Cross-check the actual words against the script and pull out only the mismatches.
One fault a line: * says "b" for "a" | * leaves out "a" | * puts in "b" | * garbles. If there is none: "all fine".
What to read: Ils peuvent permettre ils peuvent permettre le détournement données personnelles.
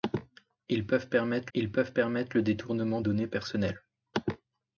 all fine